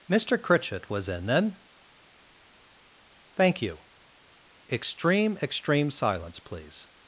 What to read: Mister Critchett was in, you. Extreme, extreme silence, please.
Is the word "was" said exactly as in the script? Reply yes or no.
yes